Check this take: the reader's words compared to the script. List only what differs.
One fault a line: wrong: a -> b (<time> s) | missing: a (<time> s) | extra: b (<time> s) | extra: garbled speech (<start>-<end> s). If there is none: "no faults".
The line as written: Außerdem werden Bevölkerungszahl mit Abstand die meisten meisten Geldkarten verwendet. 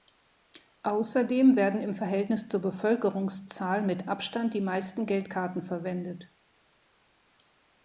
extra: im Verhältnis zur (1.8 s)
missing: meisten (5.0 s)